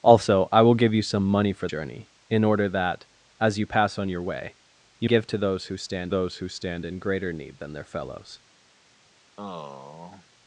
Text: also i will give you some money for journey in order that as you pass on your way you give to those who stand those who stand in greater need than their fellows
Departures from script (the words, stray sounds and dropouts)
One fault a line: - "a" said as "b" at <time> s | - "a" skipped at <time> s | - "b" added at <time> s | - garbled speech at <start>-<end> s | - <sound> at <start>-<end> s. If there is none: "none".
- sigh at 9.4-10.3 s